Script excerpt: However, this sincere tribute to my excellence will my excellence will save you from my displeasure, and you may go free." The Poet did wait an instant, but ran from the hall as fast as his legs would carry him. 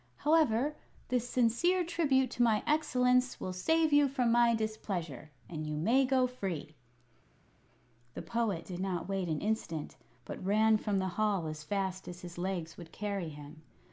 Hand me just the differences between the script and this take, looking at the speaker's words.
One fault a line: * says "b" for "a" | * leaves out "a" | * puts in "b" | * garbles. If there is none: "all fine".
* leaves out "my excellence will"
* puts in "not"